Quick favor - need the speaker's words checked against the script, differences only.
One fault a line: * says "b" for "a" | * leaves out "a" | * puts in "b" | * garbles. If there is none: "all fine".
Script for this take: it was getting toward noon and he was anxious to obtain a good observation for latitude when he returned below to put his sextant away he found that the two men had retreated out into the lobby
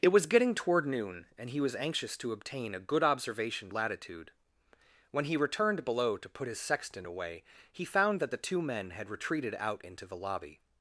* leaves out "for"